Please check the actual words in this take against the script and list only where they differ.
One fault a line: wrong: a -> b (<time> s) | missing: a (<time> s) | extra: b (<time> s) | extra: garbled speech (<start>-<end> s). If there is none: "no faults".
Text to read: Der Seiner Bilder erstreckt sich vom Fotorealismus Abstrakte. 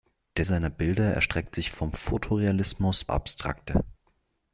no faults